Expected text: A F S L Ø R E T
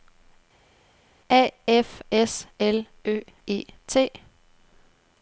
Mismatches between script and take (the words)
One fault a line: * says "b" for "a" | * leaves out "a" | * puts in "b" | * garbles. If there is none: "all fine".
* leaves out "R"